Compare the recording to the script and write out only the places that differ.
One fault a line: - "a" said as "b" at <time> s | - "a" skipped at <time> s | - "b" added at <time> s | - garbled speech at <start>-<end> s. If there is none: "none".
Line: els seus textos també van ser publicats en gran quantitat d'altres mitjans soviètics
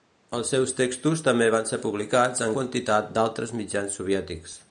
- "gran" skipped at 2.6 s